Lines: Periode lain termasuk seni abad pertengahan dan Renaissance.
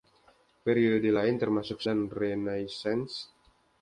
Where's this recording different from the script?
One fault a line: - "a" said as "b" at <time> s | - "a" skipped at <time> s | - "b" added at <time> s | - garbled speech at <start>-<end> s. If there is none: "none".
- "seni abad pertengahan" skipped at 1.8 s